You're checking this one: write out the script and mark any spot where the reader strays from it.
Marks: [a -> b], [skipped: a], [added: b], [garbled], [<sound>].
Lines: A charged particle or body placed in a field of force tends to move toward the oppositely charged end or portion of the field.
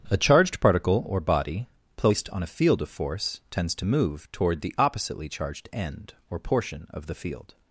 A charged particle or body placed [in -> on] a field of force tends to move toward the oppositely charged end or portion of the field.